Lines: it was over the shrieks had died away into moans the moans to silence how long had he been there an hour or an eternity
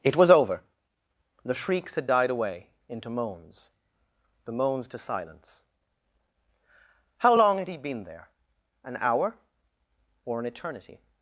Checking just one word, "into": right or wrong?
right